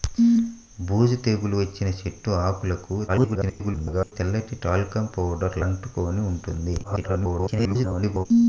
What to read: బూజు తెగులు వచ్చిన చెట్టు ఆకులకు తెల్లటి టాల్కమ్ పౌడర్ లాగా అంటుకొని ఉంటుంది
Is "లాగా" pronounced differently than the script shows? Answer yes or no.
yes